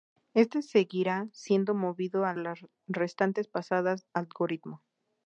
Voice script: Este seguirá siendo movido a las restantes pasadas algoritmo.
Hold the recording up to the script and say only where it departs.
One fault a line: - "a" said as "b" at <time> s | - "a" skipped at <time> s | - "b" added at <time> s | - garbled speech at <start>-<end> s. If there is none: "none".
none